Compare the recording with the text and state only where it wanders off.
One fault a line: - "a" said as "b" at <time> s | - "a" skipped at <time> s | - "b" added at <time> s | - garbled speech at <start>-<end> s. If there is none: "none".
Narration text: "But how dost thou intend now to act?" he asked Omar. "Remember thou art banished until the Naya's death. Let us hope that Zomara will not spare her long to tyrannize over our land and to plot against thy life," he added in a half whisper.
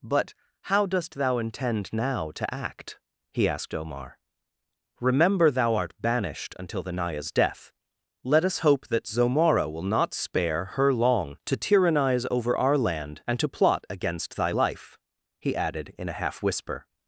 none